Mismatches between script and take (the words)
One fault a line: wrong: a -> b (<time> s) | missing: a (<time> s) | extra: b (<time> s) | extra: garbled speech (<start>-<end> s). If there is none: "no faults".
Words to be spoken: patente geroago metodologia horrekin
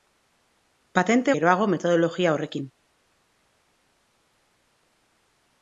no faults